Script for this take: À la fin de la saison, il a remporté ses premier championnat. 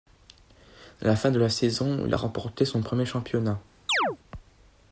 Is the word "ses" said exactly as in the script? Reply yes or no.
no